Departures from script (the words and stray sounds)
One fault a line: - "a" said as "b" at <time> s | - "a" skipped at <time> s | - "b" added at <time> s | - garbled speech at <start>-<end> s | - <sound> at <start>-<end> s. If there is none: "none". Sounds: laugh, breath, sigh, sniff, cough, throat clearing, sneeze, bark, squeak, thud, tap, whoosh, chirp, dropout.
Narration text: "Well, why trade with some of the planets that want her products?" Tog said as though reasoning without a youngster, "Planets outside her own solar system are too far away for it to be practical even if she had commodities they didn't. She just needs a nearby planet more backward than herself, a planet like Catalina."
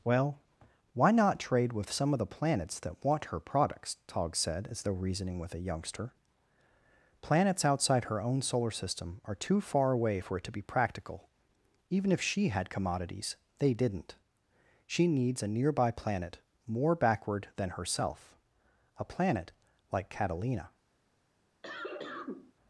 - "not" added at 1.1 s
- "without" said as "with" at 5.4 s
- "just" skipped at 15.1 s
- cough at 21.6-22.5 s